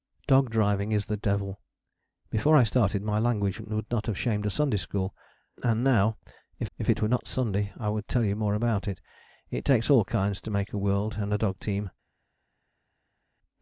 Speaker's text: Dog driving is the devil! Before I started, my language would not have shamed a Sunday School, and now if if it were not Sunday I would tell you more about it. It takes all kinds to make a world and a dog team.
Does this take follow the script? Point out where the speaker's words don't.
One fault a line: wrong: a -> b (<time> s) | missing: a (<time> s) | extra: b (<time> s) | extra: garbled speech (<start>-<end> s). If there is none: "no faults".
no faults